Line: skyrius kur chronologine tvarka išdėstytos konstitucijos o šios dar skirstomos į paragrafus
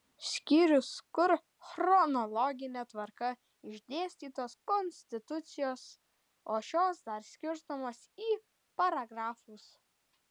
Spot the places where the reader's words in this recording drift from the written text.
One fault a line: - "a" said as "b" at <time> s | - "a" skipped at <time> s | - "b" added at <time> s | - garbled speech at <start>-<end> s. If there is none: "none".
none